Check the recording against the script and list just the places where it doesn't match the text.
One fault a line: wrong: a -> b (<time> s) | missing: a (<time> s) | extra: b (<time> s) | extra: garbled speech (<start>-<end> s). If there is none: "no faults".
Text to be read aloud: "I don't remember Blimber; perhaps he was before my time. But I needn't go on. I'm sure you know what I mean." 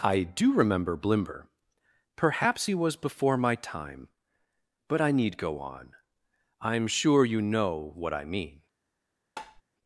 wrong: don't -> do (0.2 s)
wrong: needn't -> need (5.1 s)